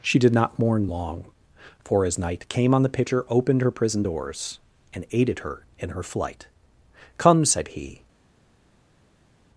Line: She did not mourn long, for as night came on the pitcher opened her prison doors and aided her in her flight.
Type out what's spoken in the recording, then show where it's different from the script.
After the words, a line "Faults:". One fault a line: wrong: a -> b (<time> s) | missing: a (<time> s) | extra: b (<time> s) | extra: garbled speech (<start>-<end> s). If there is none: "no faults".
She did not mourn long, for as night came on the pitcher opened her prison doors and aided her in her flight. "Come," said he
Faults:
extra: Come said he (7.2 s)